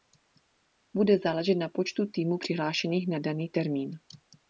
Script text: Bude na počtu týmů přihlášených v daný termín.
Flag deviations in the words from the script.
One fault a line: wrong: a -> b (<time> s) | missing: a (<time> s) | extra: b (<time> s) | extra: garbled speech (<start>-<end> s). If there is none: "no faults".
extra: záležet (1.2 s)
wrong: v -> na (3.1 s)